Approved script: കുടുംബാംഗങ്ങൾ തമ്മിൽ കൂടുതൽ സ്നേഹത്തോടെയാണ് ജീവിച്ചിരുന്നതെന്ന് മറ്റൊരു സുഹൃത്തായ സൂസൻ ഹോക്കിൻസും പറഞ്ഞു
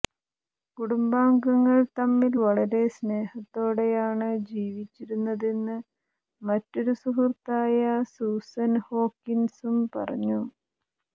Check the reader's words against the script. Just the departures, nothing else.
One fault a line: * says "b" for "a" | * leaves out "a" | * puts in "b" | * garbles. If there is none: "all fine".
* says "വളരെ" for "കൂടുതൽ"